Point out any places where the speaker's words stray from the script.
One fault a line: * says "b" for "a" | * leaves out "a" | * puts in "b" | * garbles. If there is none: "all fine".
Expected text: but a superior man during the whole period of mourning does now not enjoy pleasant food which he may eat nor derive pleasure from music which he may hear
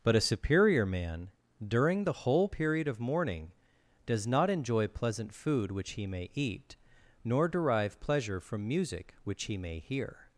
* leaves out "now"